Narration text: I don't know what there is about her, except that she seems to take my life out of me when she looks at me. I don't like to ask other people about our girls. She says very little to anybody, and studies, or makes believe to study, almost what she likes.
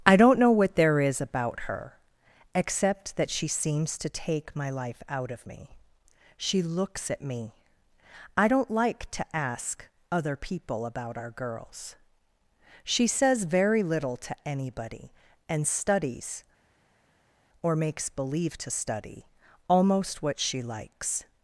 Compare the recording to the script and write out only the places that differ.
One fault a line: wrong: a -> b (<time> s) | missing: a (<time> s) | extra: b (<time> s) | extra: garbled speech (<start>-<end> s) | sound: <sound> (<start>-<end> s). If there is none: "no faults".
missing: when (5.7 s)